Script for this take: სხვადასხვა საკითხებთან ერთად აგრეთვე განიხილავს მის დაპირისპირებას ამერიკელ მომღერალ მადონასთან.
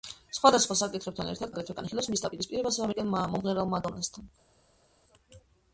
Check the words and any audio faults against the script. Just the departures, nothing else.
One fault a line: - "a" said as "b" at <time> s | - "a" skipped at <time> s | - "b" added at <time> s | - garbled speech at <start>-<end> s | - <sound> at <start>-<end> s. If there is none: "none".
none